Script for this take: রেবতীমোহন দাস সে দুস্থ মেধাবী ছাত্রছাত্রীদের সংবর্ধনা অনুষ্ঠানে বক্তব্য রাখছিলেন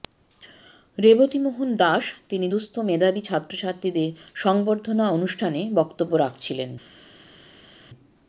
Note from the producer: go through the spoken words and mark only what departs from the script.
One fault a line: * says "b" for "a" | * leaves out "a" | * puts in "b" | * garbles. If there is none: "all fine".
* says "তিনি" for "সে"